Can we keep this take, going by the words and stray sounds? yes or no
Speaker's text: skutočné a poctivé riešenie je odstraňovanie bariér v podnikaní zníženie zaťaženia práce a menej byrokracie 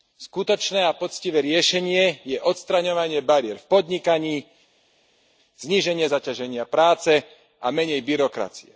yes